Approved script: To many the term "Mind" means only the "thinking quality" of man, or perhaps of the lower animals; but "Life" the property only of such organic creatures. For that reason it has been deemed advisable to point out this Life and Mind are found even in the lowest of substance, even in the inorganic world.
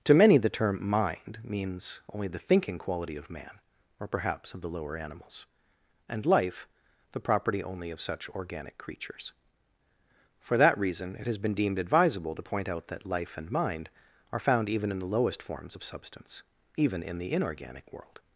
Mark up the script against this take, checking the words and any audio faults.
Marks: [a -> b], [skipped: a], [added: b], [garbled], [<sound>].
To many the term "Mind" means only the "thinking quality" of man, or perhaps of the lower animals; [but -> and] "Life" the property only of such organic creatures. For that reason it has been deemed advisable to point out [this -> that] Life and Mind are found even in the lowest [added: forms] of substance, even in the inorganic world.